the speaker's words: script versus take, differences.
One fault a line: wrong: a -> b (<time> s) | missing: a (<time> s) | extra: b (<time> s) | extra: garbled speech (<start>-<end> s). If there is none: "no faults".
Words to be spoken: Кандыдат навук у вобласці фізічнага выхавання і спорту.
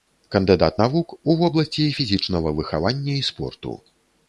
no faults